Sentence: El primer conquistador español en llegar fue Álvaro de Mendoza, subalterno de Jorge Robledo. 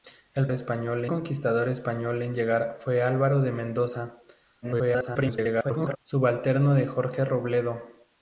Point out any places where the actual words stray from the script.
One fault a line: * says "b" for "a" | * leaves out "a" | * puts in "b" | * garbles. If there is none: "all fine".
* says "español" for "primer"
* garbles